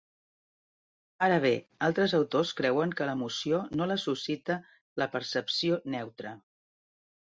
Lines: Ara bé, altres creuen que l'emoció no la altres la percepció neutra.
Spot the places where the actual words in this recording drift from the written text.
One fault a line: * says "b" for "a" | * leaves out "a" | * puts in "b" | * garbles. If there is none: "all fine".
* puts in "autors"
* says "suscita" for "altres"